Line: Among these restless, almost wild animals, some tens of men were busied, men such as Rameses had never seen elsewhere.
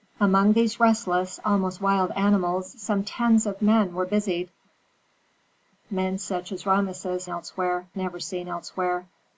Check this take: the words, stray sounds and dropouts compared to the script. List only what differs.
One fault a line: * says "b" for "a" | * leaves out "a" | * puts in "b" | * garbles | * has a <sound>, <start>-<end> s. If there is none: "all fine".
* says "elsewhere" for "had"